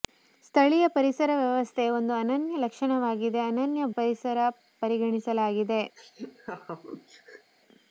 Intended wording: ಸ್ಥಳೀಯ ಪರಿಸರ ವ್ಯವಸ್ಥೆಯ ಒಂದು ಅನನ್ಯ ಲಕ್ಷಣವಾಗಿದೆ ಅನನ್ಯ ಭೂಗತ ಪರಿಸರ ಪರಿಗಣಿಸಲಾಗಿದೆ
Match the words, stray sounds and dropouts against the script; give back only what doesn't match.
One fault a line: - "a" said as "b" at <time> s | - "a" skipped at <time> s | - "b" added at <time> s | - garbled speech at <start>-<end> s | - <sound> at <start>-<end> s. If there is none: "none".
- "ಭೂಗತ" skipped at 3.9 s
- laugh at 6.0-7.5 s